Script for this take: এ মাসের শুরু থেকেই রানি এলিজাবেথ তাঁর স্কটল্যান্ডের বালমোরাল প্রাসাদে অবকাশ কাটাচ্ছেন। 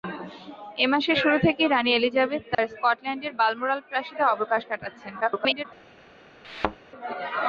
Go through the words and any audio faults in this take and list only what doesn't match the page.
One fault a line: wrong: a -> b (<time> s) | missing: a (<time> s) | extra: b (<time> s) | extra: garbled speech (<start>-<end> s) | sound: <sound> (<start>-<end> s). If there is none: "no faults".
sound: dropout (2.5-2.6 s)
extra: garbled speech (5.2-5.6 s)
sound: thud (6.4-6.8 s)